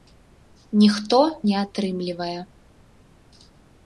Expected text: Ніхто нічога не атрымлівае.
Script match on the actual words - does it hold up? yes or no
no